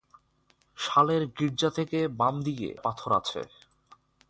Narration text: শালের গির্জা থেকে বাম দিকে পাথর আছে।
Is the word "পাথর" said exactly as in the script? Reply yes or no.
yes